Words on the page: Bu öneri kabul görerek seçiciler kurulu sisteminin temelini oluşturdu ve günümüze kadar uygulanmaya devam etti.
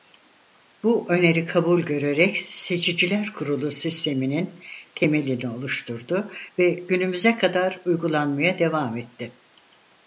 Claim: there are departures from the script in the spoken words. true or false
false